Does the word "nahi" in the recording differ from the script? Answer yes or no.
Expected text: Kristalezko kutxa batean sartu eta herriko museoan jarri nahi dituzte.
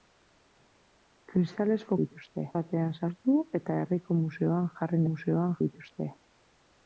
yes